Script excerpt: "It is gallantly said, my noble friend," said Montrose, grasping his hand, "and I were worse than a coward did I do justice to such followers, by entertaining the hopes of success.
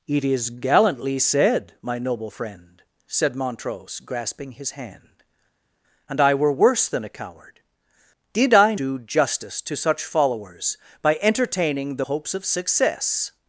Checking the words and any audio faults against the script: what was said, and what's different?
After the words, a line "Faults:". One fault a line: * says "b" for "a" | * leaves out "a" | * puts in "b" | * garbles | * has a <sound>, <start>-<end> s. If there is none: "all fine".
"It is gallantly said, my noble friend," said Montrose, grasping his hand, "and I were worse than a coward did I do justice to such followers, by entertaining the hopes of success.
Faults:
all fine